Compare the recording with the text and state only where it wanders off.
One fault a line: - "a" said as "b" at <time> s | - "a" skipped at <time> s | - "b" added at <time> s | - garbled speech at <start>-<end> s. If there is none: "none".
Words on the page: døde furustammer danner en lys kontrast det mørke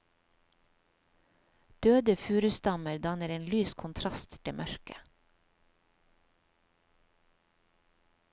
none